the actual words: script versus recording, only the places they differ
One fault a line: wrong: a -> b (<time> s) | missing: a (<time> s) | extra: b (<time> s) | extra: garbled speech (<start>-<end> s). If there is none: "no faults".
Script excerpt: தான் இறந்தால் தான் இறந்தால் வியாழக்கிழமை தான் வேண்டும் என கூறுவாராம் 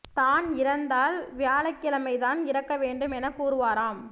missing: தான் இறந்தால் (1.2 s)
extra: இறக்க (2.5 s)